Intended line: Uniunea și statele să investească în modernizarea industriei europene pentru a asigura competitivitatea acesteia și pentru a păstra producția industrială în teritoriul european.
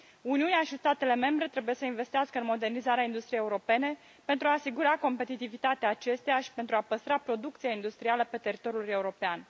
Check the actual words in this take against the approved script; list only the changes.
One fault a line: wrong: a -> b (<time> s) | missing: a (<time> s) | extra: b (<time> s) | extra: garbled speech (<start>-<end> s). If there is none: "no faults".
extra: membre trebuie (1.1 s)
wrong: în -> pe (8.2 s)